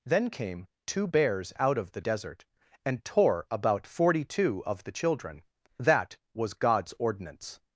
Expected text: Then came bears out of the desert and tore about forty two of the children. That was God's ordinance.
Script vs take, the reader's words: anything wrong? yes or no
yes